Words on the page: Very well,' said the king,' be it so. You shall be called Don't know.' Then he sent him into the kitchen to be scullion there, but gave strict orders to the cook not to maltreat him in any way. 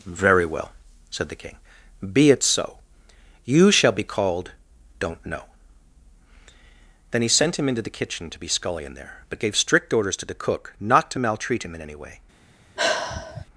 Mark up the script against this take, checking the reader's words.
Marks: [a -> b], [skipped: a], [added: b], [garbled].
Very well,' said the king,' be it so. You shall be called Don't know.' Then he sent him into the kitchen to be scullion there, but gave strict orders to the cook not to maltreat him in any way.